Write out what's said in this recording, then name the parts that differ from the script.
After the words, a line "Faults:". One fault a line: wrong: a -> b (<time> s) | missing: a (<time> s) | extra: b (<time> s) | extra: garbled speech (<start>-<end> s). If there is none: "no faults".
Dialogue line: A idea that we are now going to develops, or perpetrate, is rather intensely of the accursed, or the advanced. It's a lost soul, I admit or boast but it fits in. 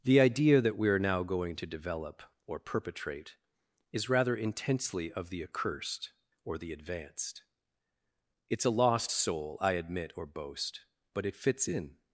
The idea that we are now going to develop, or perpetrate, is rather intensely of the accursed, or the advanced. It's a lost soul, I admit or boast but it fits in.
Faults:
wrong: A -> The (0.0 s)
wrong: develops -> develop (1.6 s)